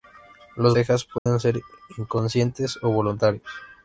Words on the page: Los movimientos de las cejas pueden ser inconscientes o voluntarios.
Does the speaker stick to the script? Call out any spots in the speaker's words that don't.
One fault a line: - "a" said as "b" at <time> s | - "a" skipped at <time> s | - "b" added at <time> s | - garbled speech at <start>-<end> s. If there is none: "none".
- "movimientos de las" skipped at 0.8 s